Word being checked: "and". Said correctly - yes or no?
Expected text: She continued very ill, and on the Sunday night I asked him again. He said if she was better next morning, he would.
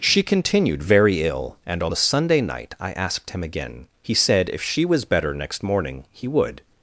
yes